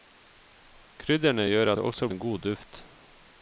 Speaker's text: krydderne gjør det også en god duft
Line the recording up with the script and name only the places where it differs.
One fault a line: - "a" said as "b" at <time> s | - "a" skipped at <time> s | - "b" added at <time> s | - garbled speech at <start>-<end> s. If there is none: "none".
none